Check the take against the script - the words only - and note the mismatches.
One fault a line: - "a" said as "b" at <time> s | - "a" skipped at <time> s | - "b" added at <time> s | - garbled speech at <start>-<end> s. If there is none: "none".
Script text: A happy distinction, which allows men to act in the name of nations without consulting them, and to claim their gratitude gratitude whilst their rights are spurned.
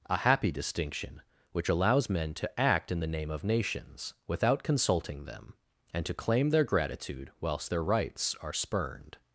- "gratitude" skipped at 7.3 s